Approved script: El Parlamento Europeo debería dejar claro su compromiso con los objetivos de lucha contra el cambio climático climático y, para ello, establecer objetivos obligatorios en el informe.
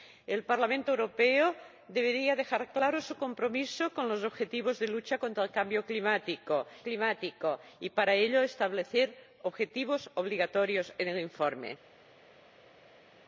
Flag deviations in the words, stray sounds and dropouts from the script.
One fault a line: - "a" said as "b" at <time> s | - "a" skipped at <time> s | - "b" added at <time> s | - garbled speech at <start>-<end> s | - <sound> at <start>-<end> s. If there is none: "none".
none